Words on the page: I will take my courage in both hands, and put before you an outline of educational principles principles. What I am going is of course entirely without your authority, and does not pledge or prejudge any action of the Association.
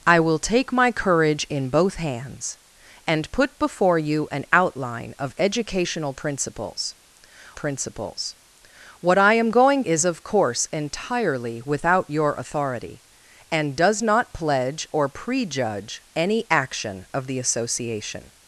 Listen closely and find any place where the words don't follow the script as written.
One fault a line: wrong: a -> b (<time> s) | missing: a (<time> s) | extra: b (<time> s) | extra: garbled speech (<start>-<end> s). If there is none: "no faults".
no faults